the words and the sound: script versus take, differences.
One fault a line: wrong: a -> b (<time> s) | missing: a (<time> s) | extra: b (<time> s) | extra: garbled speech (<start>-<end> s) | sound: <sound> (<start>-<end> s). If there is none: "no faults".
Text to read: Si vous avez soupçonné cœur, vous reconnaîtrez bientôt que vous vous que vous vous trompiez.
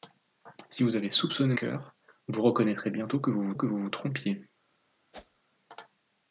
sound: whoosh (5.1-5.4 s)